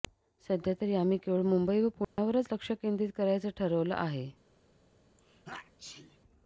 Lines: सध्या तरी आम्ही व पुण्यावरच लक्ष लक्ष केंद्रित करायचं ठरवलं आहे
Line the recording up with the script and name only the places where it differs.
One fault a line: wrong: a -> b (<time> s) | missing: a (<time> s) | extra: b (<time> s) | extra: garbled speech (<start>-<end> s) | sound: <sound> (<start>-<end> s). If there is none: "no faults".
extra: केवळ मुंबई (1.2 s)
sound: dropout (2.0-2.2 s)
missing: लक्ष (2.7 s)
sound: sneeze (5.2-6.2 s)